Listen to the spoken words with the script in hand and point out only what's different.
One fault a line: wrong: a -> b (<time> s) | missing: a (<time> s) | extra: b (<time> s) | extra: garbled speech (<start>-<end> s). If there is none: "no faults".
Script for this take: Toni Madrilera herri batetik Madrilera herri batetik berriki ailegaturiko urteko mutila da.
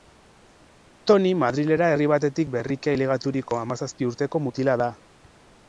missing: Madrilera herri batetik (2.6 s)
extra: hamazazpi (3.7 s)